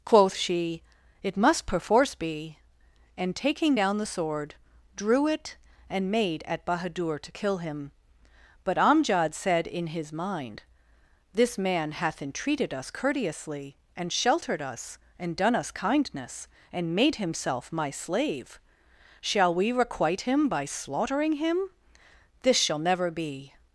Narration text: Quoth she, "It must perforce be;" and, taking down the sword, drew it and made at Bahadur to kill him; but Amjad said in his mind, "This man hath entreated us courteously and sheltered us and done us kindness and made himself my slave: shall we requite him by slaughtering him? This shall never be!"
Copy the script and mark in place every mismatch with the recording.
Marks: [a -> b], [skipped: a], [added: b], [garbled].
Quoth she, "It must perforce be;" and, taking down the sword, drew it and made at Bahadur to kill him; but Amjad said in his mind, "This man hath entreated us courteously and sheltered us and done us kindness and made himself my slave: shall we requite him by slaughtering him? This shall never be!"